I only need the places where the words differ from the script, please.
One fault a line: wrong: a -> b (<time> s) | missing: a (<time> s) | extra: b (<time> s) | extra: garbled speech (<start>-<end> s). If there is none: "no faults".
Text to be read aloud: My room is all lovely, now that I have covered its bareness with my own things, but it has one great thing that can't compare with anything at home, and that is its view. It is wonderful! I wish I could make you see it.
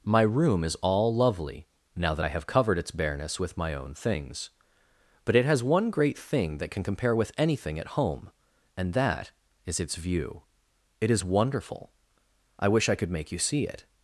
wrong: can't -> can (6.7 s)